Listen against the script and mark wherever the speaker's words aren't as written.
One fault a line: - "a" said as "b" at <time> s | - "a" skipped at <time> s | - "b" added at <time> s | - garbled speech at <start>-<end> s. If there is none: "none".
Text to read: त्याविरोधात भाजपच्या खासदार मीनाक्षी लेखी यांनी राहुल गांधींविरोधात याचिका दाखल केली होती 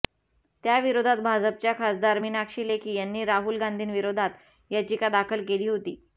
none